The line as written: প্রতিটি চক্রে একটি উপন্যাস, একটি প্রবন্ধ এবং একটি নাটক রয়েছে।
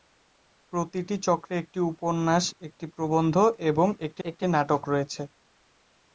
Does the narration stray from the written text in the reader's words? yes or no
yes